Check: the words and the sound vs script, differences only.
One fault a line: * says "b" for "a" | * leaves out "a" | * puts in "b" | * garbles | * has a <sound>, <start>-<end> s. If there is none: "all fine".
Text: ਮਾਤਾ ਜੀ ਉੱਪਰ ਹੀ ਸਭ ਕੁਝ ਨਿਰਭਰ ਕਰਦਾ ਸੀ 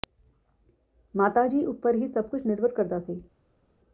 all fine